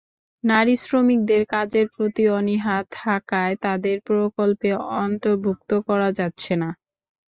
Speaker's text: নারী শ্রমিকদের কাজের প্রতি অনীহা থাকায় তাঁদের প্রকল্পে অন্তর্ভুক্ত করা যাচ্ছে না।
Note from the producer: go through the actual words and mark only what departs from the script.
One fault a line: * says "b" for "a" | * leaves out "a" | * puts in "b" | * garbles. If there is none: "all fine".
all fine